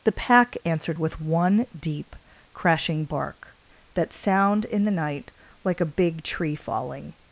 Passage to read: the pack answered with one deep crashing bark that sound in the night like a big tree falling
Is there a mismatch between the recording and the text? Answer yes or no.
no